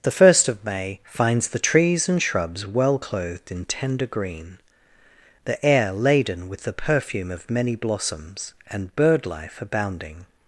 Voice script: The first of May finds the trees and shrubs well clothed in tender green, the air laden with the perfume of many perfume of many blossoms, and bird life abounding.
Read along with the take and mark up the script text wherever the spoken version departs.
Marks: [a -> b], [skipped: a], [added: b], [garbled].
The first of May finds the trees and shrubs well clothed in tender green, the air laden with the perfume of many [skipped: perfume of many] blossoms, and bird life abounding.